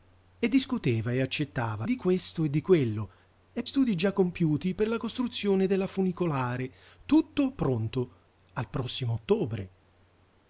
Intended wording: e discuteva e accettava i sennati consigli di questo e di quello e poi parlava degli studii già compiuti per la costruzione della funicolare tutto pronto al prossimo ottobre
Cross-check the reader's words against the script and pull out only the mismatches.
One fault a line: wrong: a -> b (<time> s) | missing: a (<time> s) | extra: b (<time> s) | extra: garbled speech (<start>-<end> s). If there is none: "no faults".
missing: i sennati consigli (1.9 s)
missing: poi parlava degli (3.6 s)